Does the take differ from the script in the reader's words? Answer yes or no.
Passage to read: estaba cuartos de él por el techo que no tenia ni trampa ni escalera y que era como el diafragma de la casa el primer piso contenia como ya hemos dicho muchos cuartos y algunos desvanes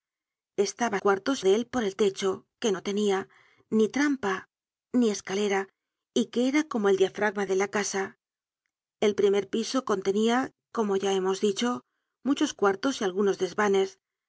no